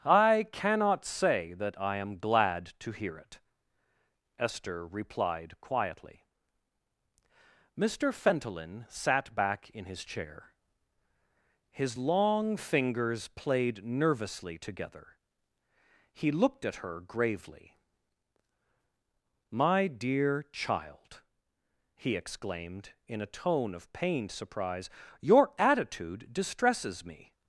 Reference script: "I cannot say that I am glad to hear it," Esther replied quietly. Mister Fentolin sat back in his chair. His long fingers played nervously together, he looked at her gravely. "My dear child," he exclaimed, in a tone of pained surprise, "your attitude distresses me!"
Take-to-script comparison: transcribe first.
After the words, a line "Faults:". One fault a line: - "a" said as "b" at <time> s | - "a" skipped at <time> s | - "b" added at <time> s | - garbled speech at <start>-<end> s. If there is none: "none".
"I cannot say that I am glad to hear it," Esther replied quietly. Mister Fentolin sat back in his chair. His long fingers played nervously together, he looked at her gravely. "My dear child," he exclaimed, in a tone of pained surprise, "your attitude distresses me!"
Faults:
none